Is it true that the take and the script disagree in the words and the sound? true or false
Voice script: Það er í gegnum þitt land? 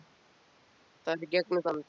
true